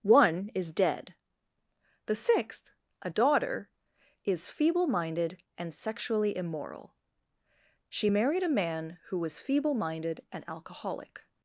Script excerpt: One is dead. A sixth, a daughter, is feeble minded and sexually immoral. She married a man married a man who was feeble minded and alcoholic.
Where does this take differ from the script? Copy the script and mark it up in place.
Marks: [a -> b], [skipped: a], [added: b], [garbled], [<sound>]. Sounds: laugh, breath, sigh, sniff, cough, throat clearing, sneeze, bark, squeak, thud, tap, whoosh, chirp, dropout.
One is dead. [A -> The] sixth, a daughter, is feeble minded and sexually immoral. She married a man [skipped: married a man] who was feeble minded and alcoholic.